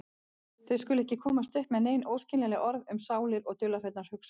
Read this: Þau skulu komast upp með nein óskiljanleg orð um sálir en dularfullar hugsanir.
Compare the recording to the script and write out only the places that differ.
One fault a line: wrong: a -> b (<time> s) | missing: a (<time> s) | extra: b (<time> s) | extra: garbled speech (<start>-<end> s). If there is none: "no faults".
extra: ekki (1.0 s)
wrong: en -> og (3.5 s)